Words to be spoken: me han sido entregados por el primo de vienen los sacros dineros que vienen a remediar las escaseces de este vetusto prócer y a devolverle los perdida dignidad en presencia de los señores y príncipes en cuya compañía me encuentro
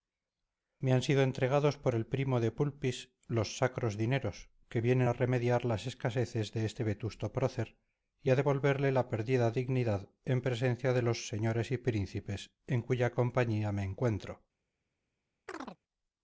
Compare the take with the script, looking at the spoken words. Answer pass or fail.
fail